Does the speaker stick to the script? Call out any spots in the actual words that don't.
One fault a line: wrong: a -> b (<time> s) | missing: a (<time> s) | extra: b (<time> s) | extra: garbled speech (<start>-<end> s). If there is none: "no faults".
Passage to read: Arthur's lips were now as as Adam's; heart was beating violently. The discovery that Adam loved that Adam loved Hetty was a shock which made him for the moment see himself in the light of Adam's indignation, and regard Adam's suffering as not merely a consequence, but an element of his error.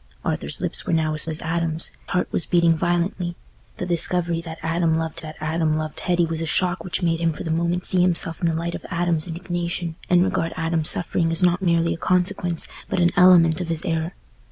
no faults